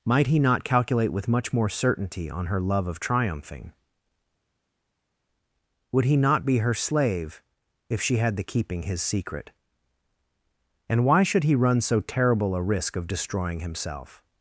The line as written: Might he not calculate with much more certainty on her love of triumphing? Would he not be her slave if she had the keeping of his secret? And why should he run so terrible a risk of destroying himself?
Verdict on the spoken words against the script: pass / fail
fail